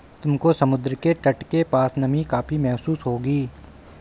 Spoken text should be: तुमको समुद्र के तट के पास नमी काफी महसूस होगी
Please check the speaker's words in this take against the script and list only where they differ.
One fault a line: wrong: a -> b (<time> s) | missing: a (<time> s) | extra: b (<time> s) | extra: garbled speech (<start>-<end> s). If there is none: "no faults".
no faults